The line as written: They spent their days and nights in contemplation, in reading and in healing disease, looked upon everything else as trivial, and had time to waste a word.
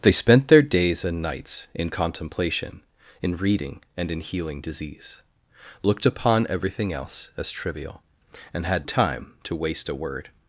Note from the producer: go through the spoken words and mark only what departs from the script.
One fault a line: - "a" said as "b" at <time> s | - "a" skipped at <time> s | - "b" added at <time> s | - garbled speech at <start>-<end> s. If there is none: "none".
none